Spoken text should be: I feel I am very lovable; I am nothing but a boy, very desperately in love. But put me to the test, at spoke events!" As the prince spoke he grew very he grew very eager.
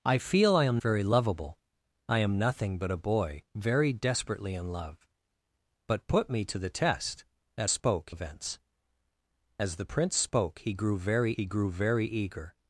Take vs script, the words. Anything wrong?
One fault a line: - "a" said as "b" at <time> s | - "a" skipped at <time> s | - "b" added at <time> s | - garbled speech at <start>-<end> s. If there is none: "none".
none